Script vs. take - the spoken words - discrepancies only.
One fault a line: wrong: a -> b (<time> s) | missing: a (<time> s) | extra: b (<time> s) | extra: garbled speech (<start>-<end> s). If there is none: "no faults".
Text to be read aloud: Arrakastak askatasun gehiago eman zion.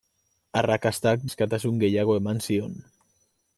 no faults